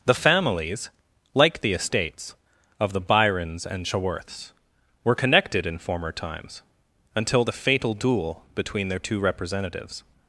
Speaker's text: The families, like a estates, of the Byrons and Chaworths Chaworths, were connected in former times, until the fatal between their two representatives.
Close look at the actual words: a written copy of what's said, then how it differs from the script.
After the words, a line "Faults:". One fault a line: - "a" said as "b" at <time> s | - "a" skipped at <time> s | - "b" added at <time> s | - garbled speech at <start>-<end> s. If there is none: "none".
The families, like the estates, of the Byrons and Chaworths, were connected in former times, until the fatal duel between their two representatives.
Faults:
- "a" said as "the" at 1.6 s
- "Chaworths" skipped at 4.5 s
- "duel" added at 7.9 s